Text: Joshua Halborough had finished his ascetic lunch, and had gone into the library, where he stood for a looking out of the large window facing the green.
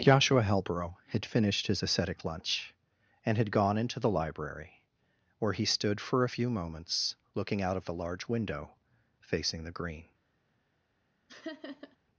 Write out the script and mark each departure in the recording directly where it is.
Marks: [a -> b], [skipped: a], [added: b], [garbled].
Joshua Halborough had finished his ascetic lunch, and had gone into the library, where he stood for a [added: few moments] looking out of the large window facing the green.